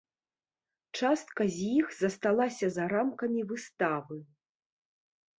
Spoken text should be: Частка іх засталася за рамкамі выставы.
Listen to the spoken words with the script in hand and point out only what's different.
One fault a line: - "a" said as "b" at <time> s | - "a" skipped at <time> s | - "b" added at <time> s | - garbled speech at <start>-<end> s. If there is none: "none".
- "з" added at 1.6 s